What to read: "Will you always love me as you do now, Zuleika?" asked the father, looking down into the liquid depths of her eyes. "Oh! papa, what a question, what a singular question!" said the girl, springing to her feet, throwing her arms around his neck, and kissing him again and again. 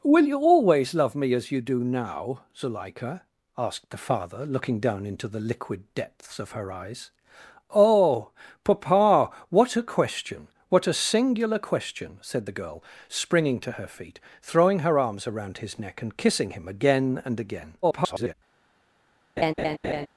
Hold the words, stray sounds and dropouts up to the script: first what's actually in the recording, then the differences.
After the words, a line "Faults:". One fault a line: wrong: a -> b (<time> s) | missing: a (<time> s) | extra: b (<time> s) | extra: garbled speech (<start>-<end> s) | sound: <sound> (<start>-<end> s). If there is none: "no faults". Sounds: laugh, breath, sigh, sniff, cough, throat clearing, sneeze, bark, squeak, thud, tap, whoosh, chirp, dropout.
"Will you always love me as you do now, Zuleika?" asked the father, looking down into the liquid depths of her eyes. "Oh! papa, what a question, what a singular question!" said the girl, springing to her feet, throwing her arms around his neck, and kissing him again and again. [garbled]
Faults:
extra: garbled speech (17.8-18.3 s)
sound: laugh (19.4-20.1 s)